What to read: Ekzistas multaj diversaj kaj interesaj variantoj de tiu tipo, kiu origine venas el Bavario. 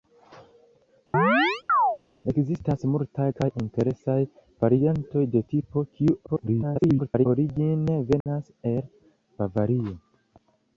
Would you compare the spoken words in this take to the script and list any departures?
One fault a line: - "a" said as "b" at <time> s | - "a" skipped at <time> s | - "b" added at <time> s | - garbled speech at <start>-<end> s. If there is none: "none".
- "diversaj" skipped at 3.3 s
- "tiu" skipped at 5.4 s
- garbled speech at 6.3-7.3 s